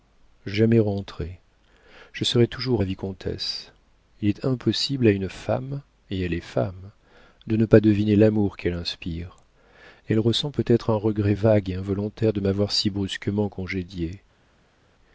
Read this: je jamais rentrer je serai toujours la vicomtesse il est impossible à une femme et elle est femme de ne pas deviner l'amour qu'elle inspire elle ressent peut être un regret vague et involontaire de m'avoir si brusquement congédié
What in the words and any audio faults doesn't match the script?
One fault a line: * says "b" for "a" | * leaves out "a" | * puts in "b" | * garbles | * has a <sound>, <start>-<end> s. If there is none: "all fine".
all fine